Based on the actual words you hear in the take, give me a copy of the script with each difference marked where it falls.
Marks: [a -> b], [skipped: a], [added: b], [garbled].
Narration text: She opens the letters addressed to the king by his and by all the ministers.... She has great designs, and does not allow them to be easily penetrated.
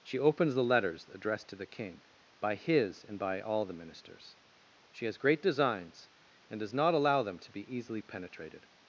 She opens the letters addressed to the king by his and by all the ministers.... She has great designs, and does not allow them to be easily penetrated.